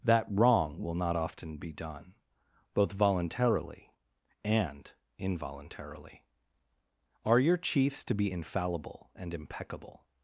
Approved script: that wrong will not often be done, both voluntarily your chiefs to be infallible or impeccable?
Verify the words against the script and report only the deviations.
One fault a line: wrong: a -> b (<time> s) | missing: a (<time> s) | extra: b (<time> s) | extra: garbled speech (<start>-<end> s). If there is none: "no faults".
extra: and involuntarily Are (4.4 s)
wrong: or -> and (9.1 s)